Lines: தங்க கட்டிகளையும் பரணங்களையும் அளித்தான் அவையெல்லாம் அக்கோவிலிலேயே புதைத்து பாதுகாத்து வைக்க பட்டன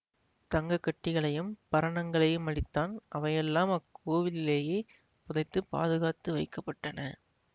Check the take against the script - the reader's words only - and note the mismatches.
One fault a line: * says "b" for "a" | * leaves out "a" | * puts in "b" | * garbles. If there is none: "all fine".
all fine